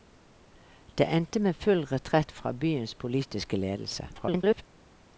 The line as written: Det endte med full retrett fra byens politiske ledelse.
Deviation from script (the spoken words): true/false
true